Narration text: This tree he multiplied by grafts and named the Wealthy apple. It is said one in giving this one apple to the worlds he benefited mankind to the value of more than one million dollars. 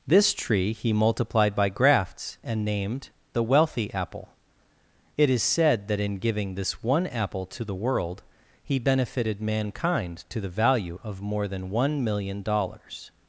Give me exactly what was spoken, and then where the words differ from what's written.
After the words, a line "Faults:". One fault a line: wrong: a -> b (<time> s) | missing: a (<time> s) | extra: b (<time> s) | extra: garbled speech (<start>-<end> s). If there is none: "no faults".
This tree he multiplied by grafts and named the Wealthy apple. It is said that in giving this one apple to the world he benefited mankind to the value of more than one million dollars.
Faults:
wrong: one -> that (5.9 s)
wrong: worlds -> world (7.8 s)